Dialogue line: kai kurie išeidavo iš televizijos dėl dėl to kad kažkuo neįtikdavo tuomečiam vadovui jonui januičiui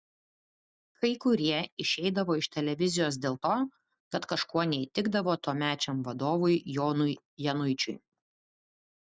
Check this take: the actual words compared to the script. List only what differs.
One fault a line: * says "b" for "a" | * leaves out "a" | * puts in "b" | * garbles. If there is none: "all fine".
* leaves out "dėl"